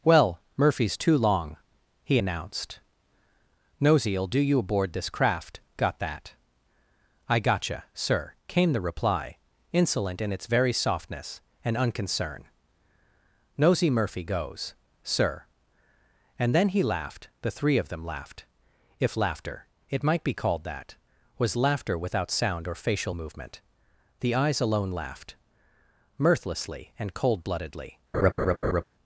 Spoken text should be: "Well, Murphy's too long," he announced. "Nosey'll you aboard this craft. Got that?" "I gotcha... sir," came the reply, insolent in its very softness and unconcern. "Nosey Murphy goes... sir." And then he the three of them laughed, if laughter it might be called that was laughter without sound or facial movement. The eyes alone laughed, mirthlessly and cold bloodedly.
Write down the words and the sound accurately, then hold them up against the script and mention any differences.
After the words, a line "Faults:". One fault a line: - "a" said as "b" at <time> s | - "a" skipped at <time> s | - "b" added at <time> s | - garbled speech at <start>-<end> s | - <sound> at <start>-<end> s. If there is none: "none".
"Well, Murphy's too long," he announced. "Nosey'll do you aboard this craft. Got that?" "I gotcha... sir," came the reply, insolent in its very softness and unconcern. "Nosey Murphy goes... sir." And then he laughed, the three of them laughed, if laughter it might be called that was laughter without sound or facial movement. The eyes alone laughed, mirthlessly and cold bloodedly.
Faults:
- "do" added at 4.3 s
- "laughed" added at 16.8 s
- laugh at 28.1-28.8 s